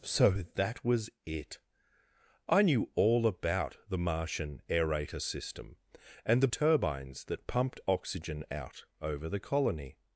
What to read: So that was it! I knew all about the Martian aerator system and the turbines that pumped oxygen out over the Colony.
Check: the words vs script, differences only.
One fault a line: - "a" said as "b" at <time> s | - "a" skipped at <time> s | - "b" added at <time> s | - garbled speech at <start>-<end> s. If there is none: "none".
none